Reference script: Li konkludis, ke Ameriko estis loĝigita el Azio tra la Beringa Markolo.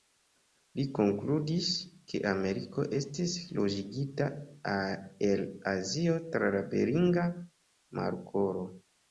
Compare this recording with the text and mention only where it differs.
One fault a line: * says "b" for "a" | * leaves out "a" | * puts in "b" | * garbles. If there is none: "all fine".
all fine